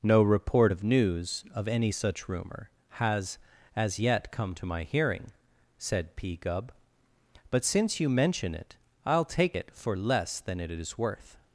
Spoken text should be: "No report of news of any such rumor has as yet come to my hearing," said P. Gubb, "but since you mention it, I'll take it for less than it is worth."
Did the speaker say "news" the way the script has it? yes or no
yes